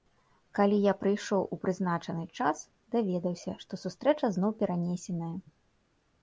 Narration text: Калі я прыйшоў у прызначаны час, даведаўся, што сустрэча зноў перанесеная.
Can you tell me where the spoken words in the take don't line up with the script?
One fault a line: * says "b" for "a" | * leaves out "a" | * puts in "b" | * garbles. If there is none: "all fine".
all fine